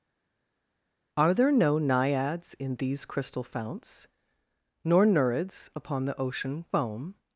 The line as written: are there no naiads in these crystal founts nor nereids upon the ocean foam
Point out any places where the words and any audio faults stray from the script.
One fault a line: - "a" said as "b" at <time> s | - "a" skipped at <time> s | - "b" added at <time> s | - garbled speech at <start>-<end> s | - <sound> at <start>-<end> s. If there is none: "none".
none